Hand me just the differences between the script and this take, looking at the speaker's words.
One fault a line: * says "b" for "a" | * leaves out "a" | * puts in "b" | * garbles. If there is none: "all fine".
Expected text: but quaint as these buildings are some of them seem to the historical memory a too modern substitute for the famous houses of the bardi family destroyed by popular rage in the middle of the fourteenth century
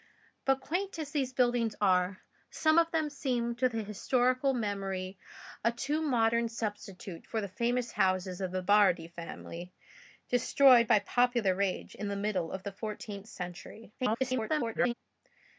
* garbles